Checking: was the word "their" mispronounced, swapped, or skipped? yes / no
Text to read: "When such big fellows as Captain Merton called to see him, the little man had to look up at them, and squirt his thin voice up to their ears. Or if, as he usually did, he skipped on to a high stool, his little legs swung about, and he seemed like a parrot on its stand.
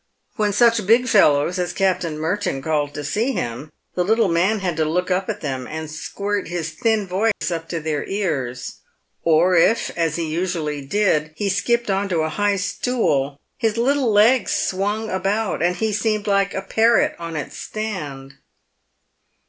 no